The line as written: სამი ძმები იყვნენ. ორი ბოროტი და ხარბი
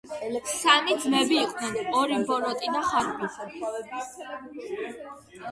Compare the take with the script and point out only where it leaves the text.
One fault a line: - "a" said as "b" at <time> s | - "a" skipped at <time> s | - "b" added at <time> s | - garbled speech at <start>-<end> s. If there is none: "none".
none